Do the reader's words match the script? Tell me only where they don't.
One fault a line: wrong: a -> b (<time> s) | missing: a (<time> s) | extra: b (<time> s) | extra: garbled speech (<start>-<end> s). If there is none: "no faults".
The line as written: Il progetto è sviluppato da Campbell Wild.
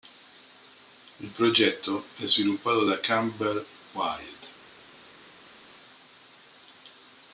no faults